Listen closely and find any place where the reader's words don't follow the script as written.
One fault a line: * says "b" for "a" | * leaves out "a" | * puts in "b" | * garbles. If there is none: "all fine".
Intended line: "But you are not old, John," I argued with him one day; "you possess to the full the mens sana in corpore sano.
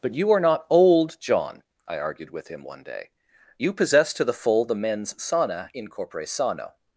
all fine